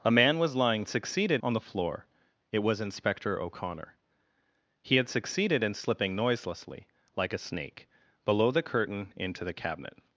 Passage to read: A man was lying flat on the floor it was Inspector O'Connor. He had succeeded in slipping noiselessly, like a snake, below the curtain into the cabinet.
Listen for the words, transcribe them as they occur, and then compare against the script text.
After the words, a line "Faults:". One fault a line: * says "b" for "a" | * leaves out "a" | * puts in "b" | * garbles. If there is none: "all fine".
A man was lying succeeded on the floor it was Inspector O'Connor. He had succeeded in slipping noiselessly, like a snake, below the curtain into the cabinet.
Faults:
* says "succeeded" for "flat"